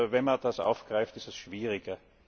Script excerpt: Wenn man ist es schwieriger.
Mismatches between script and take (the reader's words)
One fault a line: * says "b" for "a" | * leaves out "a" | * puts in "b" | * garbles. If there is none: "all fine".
* puts in "das aufgreift"